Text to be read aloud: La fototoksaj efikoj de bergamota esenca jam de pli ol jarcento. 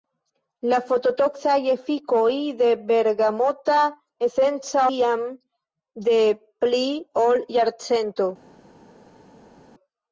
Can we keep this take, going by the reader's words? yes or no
yes